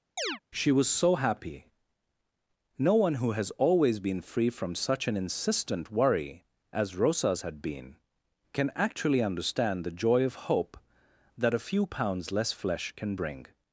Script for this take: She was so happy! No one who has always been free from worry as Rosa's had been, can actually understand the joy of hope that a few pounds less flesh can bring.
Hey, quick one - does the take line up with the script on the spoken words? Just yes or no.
no